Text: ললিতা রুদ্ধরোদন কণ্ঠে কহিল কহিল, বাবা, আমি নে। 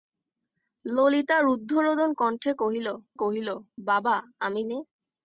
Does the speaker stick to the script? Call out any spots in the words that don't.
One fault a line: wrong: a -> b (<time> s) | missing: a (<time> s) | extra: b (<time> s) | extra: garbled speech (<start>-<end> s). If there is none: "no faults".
no faults